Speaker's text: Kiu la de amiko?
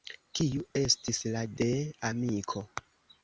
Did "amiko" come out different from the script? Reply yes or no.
no